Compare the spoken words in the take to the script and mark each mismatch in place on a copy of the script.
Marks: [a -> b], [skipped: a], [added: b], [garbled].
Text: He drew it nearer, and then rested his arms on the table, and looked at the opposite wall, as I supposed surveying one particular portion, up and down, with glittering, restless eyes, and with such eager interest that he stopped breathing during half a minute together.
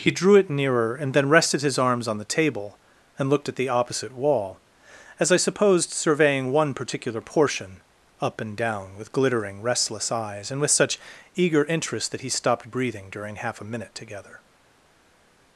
He drew it nearer, and then rested his arms on the table, and looked at the opposite wall, as I supposed surveying one particular portion, up and down, with glittering, restless eyes, and with such eager interest that he stopped breathing during half a minute together.